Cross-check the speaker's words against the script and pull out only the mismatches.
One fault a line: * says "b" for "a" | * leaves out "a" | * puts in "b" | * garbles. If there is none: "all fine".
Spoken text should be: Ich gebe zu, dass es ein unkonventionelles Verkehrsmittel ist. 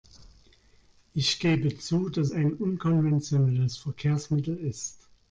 * leaves out "es"